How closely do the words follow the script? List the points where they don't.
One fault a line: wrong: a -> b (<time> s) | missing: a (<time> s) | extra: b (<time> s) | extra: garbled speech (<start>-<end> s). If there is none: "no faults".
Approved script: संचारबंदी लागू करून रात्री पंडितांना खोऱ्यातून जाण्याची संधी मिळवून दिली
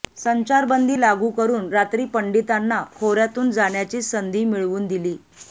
no faults